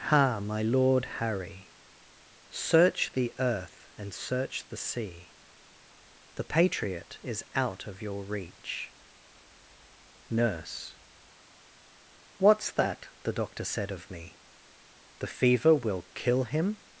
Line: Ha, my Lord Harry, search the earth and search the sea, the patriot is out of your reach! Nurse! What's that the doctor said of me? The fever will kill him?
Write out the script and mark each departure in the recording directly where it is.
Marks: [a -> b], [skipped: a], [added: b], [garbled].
Ha, my Lord Harry, search the earth and search the sea, the patriot is out of your reach! Nurse! What's that the doctor said of me? The fever will kill him?